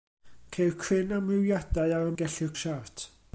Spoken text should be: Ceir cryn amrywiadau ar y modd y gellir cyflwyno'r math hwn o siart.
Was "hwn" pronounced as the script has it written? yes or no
no